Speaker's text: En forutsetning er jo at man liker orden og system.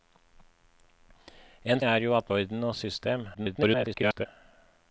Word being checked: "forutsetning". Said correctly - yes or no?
no